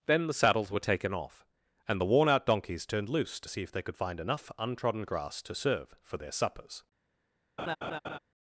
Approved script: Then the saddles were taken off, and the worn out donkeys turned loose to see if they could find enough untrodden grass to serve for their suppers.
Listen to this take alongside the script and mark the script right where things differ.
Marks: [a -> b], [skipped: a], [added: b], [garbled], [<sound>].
Then the saddles were taken off, and the worn out donkeys turned loose to see if they could find enough untrodden grass to serve for their suppers. [laugh]